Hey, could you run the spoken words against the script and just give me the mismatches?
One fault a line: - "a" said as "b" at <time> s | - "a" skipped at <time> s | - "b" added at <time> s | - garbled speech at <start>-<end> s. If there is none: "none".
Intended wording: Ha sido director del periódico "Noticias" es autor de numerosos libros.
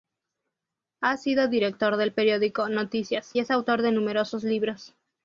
none